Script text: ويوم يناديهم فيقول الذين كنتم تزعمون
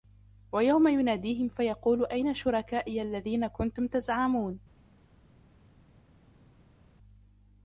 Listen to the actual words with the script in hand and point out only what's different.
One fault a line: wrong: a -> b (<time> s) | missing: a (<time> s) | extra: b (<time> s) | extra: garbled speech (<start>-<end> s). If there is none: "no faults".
extra: أين شركائي (2.0 s)